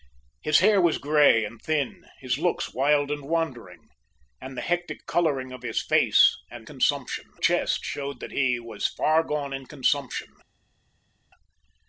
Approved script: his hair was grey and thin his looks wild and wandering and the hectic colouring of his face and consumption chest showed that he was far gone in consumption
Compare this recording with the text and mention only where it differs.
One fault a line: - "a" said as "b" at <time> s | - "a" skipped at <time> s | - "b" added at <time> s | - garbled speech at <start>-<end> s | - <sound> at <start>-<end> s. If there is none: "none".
none